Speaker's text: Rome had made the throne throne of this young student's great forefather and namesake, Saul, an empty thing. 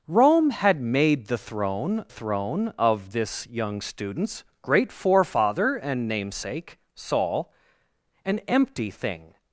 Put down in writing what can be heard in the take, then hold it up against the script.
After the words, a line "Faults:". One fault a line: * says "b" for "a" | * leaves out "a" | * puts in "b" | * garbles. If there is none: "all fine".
Rome had made the throne throne of this young student's great forefather and namesake, Saul, an empty thing.
Faults:
all fine